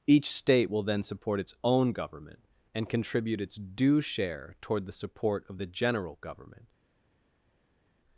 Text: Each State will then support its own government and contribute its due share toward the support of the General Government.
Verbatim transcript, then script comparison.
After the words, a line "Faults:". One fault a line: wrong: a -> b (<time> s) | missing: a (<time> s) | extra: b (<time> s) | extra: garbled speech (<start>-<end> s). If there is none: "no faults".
Each State will then support its own government and contribute its due share toward the support of the General Government.
Faults:
no faults